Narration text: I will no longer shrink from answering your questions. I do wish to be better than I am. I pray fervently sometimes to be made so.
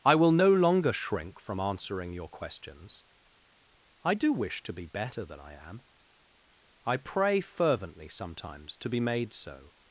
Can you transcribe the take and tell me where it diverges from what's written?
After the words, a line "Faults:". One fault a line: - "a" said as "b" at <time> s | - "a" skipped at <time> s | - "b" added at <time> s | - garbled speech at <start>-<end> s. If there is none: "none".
I will no longer shrink from answering your questions. I do wish to be better than I am. I pray fervently sometimes to be made so.
Faults:
none